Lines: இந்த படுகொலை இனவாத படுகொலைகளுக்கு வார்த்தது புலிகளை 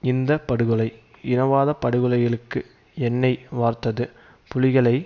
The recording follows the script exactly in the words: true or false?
false